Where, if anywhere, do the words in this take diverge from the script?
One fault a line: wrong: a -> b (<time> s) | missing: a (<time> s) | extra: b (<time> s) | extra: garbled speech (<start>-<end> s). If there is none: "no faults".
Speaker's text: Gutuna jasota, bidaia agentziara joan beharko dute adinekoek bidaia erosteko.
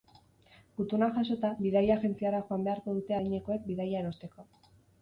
no faults